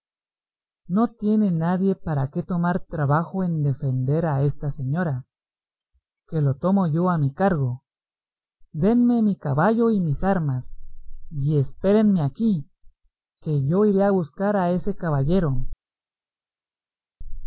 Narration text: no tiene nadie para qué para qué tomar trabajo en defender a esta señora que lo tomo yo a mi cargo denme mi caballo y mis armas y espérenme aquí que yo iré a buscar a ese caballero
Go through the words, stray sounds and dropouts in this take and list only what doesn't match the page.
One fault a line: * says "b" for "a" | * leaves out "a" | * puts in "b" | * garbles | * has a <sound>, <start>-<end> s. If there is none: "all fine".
* leaves out "para qué"